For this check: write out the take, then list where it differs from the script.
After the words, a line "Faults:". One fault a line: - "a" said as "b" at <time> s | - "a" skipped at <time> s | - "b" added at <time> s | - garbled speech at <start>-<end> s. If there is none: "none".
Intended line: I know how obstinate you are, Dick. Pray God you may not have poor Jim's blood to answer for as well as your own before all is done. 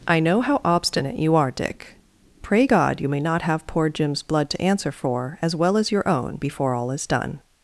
I know how obstinate you are, Dick. Pray God you may not have poor Jim's blood to answer for as well as your own before all is done.
Faults:
none